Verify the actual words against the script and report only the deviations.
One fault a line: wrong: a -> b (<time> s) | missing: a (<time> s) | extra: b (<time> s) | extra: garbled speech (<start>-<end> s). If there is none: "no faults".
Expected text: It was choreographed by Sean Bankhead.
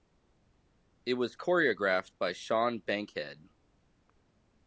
no faults